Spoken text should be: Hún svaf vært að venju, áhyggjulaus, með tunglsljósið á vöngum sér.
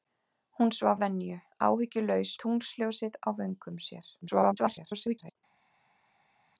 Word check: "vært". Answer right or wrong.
wrong